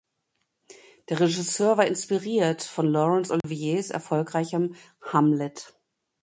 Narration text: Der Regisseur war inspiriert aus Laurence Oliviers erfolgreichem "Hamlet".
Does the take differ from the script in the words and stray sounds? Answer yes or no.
yes